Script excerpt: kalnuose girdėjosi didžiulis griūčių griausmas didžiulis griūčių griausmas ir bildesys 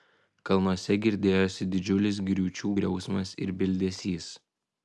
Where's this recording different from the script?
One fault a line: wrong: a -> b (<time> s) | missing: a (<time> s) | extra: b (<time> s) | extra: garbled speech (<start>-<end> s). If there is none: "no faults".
missing: didžiulis griūčių griausmas (3.4 s)